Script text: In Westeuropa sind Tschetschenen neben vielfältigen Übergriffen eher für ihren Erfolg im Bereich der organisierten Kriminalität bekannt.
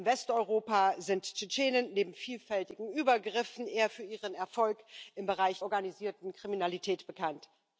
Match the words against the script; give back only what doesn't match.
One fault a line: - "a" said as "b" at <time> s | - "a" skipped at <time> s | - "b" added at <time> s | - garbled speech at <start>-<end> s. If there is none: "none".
- "der" skipped at 5.6 s